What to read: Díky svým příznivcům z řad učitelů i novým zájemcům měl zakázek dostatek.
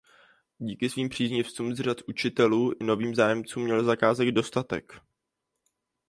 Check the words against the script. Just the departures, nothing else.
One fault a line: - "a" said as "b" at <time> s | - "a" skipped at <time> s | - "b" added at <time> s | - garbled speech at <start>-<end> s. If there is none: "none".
none